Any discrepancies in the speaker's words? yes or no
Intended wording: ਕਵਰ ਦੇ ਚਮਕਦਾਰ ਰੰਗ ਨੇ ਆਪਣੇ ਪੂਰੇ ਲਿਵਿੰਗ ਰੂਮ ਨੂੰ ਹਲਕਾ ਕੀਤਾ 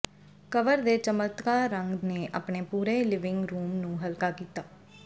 no